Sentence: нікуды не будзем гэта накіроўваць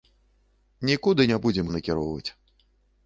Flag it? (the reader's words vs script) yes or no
yes